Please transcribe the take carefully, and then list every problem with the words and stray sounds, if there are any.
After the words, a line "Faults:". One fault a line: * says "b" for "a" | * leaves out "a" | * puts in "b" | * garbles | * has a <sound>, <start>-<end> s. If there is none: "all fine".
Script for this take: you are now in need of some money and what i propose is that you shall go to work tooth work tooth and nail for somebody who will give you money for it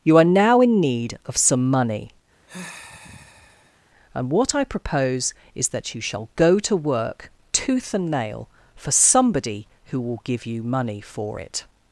you are now in need of some money and what i propose is that you shall go to work tooth and nail for somebody who will give you money for it
Faults:
* has a sigh, 2.5-3.8 s
* leaves out "work tooth"